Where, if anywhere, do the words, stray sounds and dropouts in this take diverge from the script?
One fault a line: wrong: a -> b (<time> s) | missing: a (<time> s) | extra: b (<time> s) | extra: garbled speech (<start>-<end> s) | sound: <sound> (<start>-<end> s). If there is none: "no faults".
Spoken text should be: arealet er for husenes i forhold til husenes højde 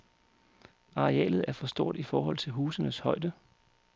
wrong: husenes -> stort (1.7 s)